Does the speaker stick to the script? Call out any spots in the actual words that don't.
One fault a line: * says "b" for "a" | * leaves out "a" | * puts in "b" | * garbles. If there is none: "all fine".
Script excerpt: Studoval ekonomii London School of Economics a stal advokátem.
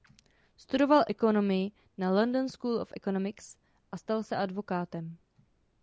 * puts in "na"
* puts in "se"